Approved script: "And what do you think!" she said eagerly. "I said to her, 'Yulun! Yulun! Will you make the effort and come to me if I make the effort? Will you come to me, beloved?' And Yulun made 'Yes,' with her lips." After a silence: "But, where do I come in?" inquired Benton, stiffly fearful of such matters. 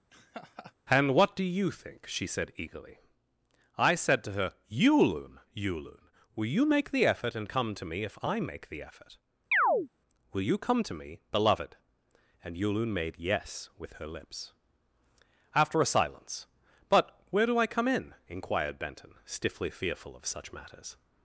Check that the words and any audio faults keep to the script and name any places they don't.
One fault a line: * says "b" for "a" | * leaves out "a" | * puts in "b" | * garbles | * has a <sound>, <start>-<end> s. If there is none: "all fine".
* has a laugh, 0.1-0.7 s
* has a chirp, 9.5-9.9 s